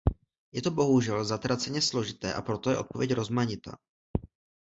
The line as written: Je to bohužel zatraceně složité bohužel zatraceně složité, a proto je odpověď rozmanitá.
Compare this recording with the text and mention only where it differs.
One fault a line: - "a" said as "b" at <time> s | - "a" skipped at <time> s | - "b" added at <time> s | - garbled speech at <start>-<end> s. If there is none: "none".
- "bohužel zatraceně složité" skipped at 2.3 s